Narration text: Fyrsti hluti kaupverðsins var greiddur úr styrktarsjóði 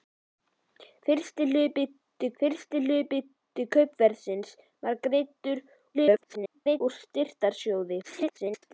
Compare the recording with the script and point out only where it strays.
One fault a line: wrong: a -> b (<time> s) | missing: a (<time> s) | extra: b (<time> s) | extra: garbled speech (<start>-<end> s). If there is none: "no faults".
extra: fyrsti hluti (2.4 s)
extra: garbled speech (5.9-6.8 s)
extra: garbled speech (8.0-8.7 s)